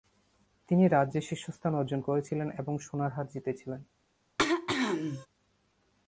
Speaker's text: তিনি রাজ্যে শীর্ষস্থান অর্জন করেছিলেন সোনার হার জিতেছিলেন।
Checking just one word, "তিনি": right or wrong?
right